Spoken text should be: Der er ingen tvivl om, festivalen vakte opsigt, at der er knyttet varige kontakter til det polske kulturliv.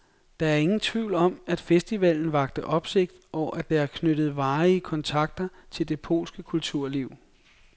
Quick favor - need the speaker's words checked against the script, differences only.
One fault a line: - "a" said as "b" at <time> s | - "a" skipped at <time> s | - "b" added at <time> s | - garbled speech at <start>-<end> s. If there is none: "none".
- "at" added at 1.5 s
- "og" added at 3.3 s